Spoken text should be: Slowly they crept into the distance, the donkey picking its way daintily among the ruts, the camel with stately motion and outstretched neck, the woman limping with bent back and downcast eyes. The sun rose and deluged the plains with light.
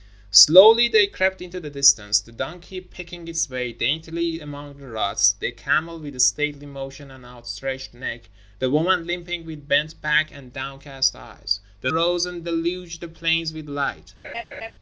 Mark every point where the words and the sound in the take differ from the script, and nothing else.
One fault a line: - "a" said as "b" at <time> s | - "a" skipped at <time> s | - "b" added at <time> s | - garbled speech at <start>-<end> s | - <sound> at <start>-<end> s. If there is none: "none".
- "sun" skipped at 11.9 s
- laugh at 14.2-14.7 s